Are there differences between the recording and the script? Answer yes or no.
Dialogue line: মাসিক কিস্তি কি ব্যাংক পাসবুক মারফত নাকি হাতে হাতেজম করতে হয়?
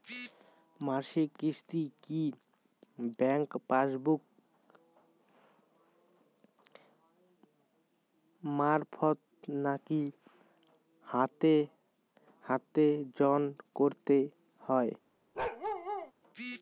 no